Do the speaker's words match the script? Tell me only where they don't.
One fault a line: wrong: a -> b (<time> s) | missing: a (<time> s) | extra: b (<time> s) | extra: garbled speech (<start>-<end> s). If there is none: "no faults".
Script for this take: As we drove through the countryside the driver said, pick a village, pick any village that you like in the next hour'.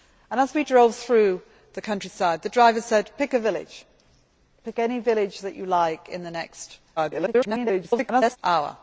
extra: garbled speech (7.0-8.4 s)